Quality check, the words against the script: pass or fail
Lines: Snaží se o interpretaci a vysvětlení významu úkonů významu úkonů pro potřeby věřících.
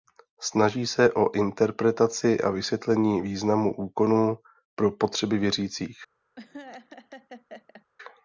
fail